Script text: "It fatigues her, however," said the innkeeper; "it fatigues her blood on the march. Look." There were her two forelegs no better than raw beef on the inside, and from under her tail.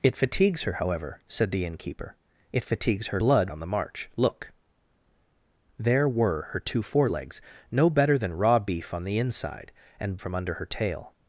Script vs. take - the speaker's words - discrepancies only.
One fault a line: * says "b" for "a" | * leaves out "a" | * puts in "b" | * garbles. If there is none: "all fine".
all fine